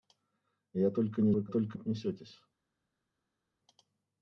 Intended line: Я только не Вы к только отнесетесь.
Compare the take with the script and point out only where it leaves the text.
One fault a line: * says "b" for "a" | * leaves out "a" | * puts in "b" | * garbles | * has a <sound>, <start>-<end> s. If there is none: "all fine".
all fine